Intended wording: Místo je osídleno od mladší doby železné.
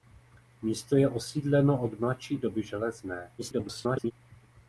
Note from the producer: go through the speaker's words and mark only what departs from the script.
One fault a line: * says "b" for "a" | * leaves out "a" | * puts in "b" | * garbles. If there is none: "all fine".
* garbles